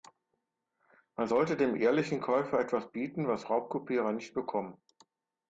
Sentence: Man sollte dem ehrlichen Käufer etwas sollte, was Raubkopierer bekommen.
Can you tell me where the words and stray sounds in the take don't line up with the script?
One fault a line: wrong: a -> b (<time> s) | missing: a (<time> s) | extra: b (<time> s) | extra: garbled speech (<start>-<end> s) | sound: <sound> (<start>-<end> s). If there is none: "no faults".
wrong: sollte -> bieten (2.9 s)
extra: nicht (4.1 s)